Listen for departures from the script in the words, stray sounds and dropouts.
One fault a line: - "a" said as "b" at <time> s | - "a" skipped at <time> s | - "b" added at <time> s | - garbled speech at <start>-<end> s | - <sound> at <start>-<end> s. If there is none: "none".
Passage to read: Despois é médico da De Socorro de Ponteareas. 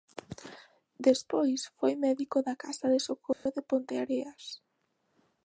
- "é" said as "foi" at 1.8 s
- "Casa" added at 2.6 s
- dropout at 3.3-3.5 s